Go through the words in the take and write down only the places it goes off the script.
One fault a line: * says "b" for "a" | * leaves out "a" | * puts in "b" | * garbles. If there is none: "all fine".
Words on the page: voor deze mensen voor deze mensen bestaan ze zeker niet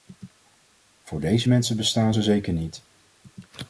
* leaves out "voor deze mensen"